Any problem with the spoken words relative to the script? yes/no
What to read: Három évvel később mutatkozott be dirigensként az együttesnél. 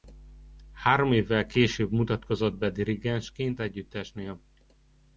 yes